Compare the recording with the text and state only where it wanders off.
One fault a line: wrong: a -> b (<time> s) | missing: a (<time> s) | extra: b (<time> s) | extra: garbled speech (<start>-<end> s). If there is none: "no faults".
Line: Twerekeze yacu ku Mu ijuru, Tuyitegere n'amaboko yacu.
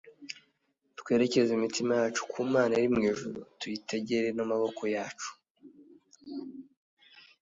extra: imitima (1.5 s)
extra: Mana iri (2.5 s)